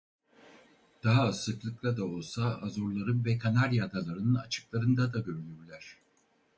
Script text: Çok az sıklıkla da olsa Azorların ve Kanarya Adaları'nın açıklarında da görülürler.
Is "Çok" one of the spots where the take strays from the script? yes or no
yes